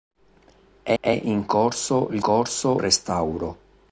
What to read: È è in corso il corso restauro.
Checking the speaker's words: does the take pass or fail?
pass